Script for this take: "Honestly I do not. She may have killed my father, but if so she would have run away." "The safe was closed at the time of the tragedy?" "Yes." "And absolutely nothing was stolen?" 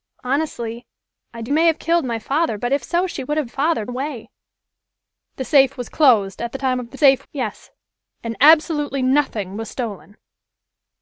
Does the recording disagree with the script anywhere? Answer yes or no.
yes